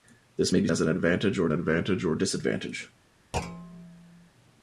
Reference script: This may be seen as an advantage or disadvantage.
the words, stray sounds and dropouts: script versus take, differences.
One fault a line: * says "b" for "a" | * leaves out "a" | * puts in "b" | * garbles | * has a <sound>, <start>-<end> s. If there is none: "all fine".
* leaves out "seen"
* puts in "advantage or"
* has a thud, 3.3-4.3 s